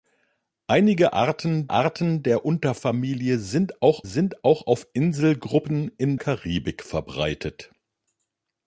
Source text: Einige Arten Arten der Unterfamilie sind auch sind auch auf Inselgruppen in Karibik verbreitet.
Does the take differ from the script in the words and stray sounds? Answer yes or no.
no